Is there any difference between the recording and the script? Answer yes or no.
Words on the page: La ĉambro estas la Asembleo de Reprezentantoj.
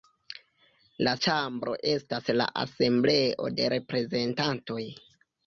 no